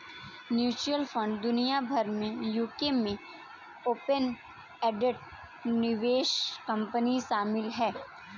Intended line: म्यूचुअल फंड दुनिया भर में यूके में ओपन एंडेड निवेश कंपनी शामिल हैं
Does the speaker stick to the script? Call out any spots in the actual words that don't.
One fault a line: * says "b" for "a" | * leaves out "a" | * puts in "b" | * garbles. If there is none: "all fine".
all fine